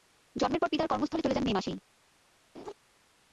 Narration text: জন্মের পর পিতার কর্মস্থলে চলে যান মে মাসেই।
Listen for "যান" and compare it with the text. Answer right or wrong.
right